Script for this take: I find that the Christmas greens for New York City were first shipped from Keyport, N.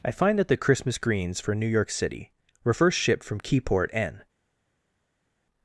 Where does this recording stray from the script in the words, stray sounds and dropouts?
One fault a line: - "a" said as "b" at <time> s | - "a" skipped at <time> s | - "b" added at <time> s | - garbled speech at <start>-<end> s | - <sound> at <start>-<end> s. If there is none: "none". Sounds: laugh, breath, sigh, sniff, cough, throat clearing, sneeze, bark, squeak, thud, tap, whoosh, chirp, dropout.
none